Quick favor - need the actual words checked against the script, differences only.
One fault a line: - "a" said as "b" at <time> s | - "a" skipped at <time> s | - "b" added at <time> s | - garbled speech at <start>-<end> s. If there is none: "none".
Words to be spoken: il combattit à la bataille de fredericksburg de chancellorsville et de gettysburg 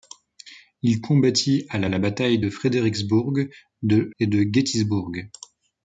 - "la" added at 1.9 s
- "chancellorsville" skipped at 4.1 s